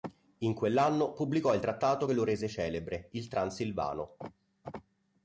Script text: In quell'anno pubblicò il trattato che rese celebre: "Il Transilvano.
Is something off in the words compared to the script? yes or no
yes